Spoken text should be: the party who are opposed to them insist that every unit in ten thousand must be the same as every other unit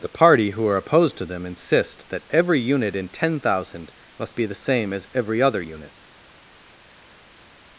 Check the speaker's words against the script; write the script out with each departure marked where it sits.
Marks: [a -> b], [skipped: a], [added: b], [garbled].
the party who are opposed to them insist that every unit in ten thousand must be the same as every other unit